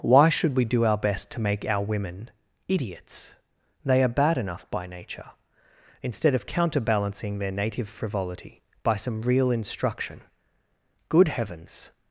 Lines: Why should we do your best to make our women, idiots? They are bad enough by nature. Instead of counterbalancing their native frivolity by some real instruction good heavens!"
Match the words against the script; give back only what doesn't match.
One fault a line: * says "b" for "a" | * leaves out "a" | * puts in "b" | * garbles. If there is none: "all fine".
* says "our" for "your"